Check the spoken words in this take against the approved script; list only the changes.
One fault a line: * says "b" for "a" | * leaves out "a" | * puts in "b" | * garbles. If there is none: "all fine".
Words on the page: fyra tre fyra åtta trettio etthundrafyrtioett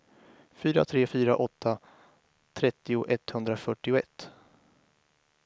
all fine